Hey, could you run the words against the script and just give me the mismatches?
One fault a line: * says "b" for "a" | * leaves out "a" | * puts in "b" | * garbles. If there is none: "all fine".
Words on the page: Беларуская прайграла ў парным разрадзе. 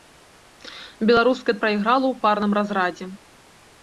all fine